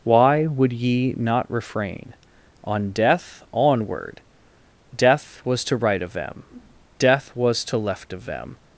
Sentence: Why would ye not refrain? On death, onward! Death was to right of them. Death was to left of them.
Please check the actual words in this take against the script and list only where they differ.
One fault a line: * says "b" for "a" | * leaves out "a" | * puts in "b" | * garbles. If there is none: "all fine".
all fine